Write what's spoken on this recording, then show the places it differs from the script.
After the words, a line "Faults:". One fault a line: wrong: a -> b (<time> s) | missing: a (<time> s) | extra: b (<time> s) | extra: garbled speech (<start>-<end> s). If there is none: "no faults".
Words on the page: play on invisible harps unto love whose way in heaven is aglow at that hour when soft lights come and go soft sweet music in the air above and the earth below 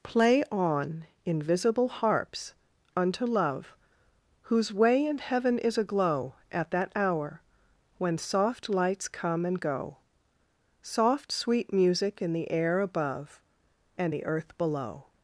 play on invisible harps unto love whose way in heaven is aglow at that hour when soft lights come and go soft sweet music in the air above and the earth below
Faults:
no faults